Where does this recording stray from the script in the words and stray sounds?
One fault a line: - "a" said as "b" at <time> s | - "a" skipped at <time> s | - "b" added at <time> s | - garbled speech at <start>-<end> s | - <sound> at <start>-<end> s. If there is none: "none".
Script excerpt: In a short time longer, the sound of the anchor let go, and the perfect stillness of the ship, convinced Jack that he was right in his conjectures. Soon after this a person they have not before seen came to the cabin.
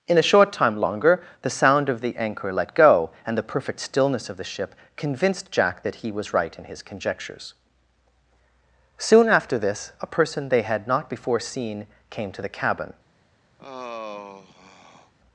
- "have" said as "had" at 10.6 s
- sigh at 13.6-15.1 s